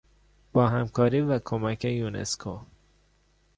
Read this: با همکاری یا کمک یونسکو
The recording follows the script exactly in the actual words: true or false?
false